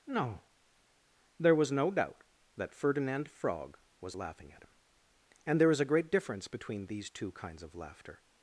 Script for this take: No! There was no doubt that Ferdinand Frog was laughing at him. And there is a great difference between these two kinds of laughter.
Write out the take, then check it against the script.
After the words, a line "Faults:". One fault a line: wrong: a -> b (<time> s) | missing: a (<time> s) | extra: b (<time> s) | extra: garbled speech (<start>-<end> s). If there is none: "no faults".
No! There was no doubt that Ferdinand Frog was laughing at him. And there is a great difference between these two kinds of laughter.
Faults:
no faults